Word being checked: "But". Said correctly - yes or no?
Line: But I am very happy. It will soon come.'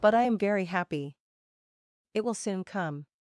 yes